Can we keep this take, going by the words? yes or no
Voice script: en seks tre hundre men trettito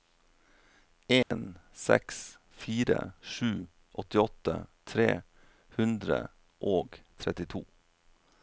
no